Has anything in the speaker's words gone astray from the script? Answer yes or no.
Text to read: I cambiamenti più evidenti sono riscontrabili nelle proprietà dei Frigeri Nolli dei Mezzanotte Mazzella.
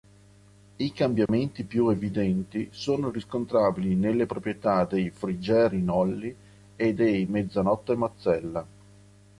yes